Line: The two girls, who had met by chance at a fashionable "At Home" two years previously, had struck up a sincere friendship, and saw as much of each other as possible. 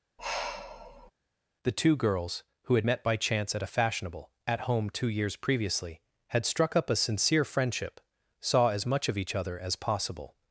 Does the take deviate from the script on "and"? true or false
true